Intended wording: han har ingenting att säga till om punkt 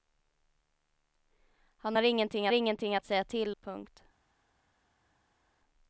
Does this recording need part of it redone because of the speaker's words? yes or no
yes